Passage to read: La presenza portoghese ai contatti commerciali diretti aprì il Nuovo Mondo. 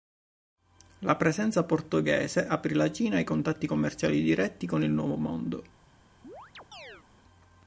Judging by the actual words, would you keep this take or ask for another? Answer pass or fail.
fail